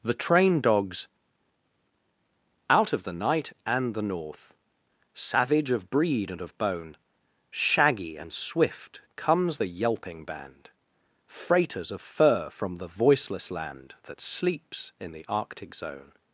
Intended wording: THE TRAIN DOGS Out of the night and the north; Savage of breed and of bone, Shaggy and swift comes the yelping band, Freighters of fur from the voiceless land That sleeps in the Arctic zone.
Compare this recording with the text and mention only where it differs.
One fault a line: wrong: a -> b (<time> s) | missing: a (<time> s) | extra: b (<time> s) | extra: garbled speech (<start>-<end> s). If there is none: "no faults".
no faults